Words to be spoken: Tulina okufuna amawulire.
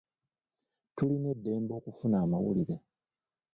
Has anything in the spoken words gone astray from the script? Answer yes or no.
yes